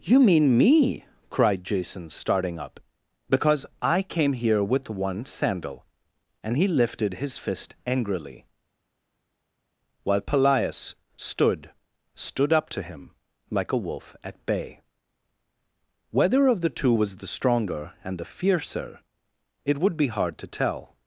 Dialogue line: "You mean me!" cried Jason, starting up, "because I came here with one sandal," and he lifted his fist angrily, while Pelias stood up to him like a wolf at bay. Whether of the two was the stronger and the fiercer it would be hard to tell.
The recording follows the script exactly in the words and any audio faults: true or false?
false